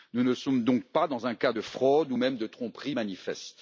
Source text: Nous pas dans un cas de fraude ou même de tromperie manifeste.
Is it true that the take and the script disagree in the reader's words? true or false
true